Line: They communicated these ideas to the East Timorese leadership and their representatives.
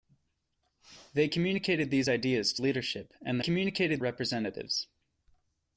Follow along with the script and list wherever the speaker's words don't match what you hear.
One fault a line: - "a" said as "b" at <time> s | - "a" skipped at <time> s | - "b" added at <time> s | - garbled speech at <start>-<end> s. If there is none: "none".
- "the East Timorese" skipped at 2.6 s
- "their" said as "communicated" at 3.4 s